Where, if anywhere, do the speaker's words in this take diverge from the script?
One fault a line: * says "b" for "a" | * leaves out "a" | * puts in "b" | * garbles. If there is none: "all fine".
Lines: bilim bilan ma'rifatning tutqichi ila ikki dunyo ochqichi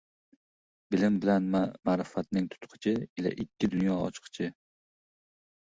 all fine